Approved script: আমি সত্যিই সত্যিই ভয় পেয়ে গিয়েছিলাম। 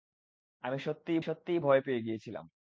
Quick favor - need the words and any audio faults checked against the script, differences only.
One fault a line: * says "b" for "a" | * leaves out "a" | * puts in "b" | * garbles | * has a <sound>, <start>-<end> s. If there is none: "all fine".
all fine